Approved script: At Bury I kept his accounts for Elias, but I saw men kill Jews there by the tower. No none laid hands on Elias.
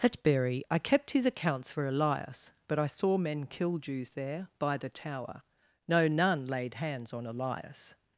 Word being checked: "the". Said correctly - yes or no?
yes